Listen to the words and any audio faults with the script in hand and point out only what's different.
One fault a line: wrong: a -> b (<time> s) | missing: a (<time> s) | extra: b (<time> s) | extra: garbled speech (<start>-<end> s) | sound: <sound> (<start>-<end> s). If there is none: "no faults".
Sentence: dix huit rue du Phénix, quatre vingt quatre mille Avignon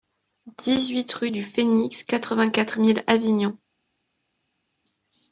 no faults